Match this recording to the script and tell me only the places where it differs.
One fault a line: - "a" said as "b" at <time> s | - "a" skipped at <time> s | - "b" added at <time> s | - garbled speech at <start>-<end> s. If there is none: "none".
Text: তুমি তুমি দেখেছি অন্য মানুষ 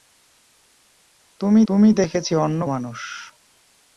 none